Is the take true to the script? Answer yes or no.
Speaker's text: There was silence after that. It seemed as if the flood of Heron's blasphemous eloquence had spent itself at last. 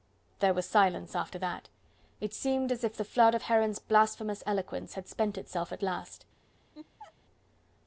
yes